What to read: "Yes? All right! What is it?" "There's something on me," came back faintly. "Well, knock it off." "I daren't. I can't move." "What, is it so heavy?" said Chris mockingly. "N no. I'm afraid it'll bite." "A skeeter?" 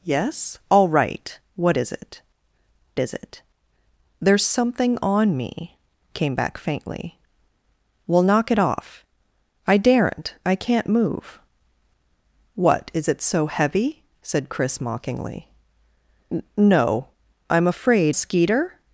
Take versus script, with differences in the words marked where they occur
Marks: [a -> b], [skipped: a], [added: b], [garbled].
"Yes? All right! What is it?" [added: is it] "There's something on me," came back faintly. "Well, knock it off." "I daren't. I can't move." "What, is it so heavy?" said Chris mockingly. "N no. I'm afraid [skipped: it'll bite." "A] skeeter?"